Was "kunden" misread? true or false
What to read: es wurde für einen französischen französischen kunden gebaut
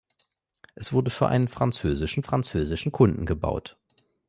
false